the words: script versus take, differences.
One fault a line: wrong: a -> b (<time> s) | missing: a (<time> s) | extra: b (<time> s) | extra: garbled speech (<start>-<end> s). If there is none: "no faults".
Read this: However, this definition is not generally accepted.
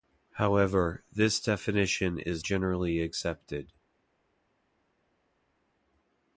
missing: not (2.4 s)